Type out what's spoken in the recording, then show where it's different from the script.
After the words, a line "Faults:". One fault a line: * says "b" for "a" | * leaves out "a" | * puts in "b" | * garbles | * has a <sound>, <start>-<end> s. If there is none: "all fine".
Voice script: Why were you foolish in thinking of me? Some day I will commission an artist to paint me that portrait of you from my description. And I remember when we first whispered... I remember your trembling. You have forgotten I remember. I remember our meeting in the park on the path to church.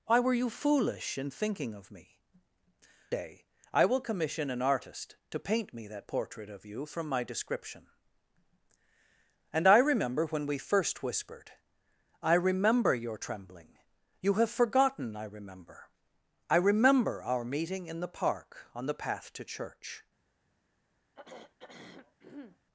Why were you foolish in thinking of me? Day I will commission an artist to paint me that portrait of you from my description. And I remember when we first whispered... I remember your trembling. You have forgotten I remember. I remember our meeting in the park on the path to church.
Faults:
* leaves out "Some"
* has a throat clearing, 21.2-22.6 s